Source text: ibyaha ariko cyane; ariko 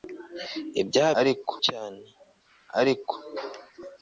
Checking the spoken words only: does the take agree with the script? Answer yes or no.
yes